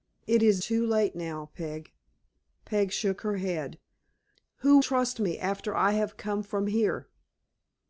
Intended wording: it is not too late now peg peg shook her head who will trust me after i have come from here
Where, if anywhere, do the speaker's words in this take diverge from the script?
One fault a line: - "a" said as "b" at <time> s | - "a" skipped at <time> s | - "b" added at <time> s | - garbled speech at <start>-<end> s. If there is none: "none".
- "not" skipped at 0.6 s
- "will" skipped at 4.8 s